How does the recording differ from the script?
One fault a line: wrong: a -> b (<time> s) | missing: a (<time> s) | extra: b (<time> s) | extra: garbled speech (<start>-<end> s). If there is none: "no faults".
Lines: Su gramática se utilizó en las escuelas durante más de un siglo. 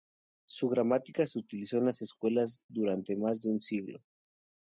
no faults